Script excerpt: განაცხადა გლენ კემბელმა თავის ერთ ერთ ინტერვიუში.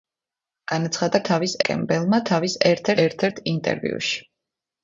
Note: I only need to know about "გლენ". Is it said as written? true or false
false